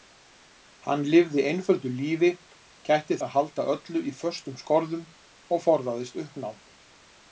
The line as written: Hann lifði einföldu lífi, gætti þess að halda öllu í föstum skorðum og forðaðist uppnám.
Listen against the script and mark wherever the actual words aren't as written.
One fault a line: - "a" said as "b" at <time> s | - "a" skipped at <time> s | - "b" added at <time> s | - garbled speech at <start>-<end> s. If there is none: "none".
- "þess" skipped at 3.2 s